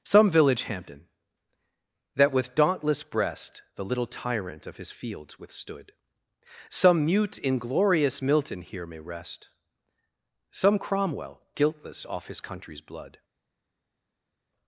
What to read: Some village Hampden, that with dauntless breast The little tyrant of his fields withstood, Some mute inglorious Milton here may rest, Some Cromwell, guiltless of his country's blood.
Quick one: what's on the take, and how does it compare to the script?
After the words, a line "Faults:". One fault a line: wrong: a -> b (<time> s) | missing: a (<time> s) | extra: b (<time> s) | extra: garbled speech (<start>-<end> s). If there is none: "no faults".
Some village Hampden, that with dauntless breast The little tyrant of his fields withstood, Some mute inglorious Milton here may rest, Some Cromwell, guiltless off his country's blood.
Faults:
wrong: of -> off (12.1 s)